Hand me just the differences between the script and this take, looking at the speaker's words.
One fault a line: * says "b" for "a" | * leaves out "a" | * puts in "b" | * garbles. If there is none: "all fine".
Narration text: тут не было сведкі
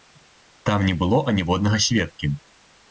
* says "там" for "тут"
* puts in "аніводнага"